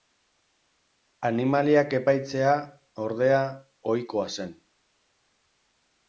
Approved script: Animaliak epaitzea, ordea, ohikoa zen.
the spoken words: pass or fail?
pass